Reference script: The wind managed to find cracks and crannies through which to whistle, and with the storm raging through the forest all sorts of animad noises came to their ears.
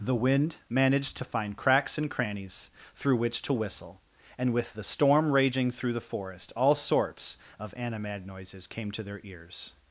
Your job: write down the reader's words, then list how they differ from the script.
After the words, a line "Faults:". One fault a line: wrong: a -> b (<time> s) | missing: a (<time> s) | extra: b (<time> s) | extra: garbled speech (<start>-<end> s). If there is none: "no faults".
The wind managed to find cracks and crannies through which to whistle, and with the storm raging through the forest all sorts of animad noises came to their ears.
Faults:
no faults